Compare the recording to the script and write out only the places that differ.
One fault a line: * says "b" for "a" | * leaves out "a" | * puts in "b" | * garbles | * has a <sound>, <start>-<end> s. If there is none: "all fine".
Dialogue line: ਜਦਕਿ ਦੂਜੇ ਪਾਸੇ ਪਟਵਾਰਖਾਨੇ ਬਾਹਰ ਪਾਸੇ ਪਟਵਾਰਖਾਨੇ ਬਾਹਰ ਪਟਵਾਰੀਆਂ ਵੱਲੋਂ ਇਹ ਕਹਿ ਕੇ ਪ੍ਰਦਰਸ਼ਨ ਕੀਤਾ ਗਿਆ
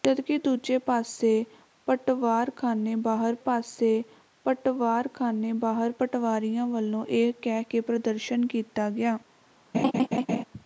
* has a laugh, 9.7-10.4 s